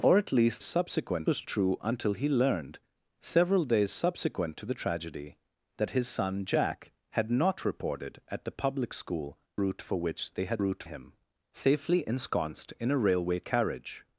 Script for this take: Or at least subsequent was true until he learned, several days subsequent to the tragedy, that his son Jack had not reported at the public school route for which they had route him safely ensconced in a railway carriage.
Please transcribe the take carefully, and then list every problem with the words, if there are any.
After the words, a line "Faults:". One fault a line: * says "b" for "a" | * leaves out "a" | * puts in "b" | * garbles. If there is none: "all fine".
Or at least subsequent was true until he learned, several days subsequent to the tragedy, that his son Jack had not reported at the public school route for which they had route him safely ensconced in a railway carriage.
Faults:
all fine